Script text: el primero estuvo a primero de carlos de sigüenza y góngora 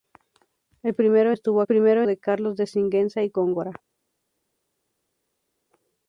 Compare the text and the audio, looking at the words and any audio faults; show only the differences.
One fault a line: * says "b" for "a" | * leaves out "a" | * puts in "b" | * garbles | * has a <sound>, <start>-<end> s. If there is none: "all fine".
all fine